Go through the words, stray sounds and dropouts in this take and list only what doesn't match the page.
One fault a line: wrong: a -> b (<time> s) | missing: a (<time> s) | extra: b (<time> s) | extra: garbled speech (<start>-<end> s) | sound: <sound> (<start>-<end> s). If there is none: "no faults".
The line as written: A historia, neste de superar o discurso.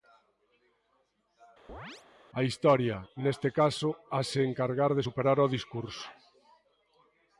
sound: chirp (1.7-2.0 s)
extra: caso hase encargar (3.6 s)